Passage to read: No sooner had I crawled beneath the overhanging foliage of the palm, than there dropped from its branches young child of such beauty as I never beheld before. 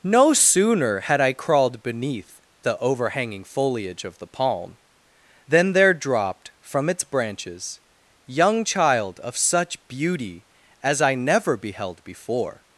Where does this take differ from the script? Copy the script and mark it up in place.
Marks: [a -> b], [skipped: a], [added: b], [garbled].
No sooner had I crawled beneath the overhanging foliage of the palm, than there dropped from its branches young child of such beauty as I never beheld before.